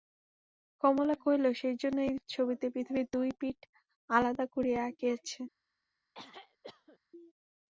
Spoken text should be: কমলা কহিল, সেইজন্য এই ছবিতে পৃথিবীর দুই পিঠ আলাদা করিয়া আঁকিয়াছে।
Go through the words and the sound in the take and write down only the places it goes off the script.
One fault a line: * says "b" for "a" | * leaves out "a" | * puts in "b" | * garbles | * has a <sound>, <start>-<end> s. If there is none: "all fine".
* has a throat clearing, 6.1-7.0 s